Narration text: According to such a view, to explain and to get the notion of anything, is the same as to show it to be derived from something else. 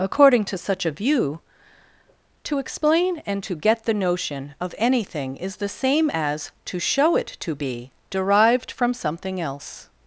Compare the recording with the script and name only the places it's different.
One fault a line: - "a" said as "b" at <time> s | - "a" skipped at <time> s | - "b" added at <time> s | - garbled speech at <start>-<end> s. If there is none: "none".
none